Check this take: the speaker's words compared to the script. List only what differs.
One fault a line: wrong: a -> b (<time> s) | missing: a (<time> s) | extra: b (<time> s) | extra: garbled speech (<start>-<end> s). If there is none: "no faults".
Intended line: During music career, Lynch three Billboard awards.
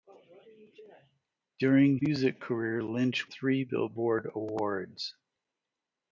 no faults